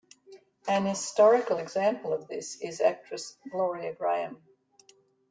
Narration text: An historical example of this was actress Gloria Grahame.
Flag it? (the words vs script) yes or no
yes